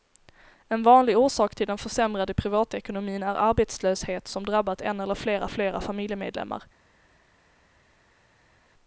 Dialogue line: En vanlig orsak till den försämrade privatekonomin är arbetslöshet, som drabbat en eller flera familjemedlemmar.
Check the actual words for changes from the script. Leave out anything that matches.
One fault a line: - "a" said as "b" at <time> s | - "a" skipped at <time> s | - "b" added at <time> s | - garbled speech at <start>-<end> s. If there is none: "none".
- "flera" added at 5.5 s